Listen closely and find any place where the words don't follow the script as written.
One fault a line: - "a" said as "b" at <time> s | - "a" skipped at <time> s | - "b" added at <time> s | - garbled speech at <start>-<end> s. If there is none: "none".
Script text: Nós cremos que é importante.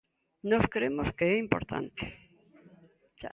none